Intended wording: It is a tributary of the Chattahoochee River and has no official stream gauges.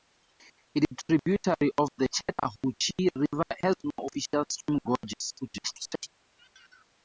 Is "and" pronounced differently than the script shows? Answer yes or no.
yes